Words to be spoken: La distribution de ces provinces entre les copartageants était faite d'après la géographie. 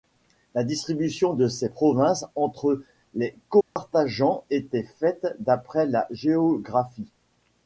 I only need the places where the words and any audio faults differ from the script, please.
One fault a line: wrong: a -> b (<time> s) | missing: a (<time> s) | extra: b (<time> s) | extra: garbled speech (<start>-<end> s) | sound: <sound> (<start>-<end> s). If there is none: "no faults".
sound: dropout (3.6-3.8 s)